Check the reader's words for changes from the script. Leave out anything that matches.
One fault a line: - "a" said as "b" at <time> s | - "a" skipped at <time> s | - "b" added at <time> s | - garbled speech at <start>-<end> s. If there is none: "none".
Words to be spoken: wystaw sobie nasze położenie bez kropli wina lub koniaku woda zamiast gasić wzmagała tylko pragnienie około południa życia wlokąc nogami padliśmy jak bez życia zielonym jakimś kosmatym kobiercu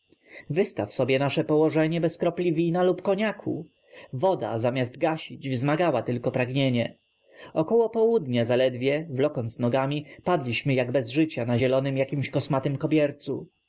- "życia" said as "zaledwie" at 8.4 s
- "na" added at 11.4 s